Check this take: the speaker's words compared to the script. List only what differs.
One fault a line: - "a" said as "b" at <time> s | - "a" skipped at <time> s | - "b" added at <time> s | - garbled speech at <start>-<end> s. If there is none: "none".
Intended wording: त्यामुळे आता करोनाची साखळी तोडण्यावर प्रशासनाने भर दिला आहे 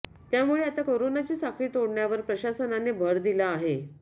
none